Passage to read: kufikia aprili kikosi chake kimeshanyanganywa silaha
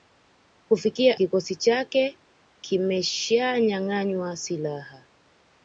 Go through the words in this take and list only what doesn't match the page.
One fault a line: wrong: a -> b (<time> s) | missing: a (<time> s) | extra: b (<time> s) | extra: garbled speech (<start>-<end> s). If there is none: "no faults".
missing: aprili (1.2 s)